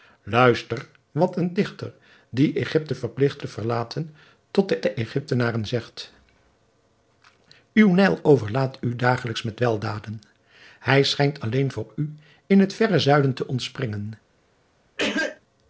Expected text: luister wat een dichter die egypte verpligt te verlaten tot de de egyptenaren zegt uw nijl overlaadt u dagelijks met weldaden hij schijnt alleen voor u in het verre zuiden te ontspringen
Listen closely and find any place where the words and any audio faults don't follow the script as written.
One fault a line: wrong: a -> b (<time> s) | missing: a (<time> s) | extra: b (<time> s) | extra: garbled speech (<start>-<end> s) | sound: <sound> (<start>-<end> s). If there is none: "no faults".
sound: cough (15.0-15.4 s)